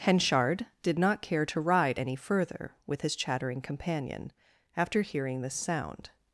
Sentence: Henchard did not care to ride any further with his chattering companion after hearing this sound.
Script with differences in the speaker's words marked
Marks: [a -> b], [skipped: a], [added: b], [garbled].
Henchard did not care to ride any further with his chattering companion after hearing this sound.